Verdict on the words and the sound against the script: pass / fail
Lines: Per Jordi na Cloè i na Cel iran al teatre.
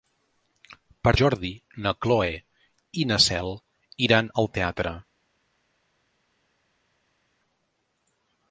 pass